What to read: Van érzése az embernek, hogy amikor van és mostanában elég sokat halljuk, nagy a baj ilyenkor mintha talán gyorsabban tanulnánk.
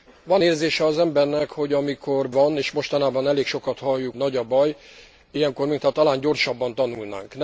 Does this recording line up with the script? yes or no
yes